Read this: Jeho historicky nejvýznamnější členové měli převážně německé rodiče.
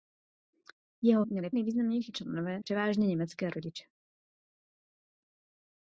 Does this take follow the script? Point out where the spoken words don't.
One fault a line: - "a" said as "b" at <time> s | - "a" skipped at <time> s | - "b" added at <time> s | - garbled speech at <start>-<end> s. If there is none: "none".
- "historicky" said as "měli" at 1.2 s
- "měli" skipped at 2.6 s